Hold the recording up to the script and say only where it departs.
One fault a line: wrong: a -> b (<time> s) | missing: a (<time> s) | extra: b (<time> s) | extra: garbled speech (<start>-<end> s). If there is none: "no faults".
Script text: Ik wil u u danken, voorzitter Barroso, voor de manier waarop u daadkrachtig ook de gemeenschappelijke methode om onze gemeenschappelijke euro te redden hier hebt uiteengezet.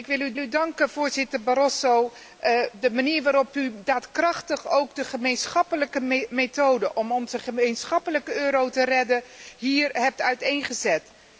no faults